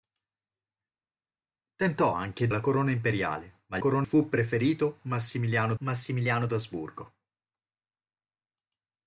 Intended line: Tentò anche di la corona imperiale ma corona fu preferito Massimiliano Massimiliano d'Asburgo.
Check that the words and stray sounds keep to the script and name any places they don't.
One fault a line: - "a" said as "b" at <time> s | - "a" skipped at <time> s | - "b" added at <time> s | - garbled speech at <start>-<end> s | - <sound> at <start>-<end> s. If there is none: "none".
none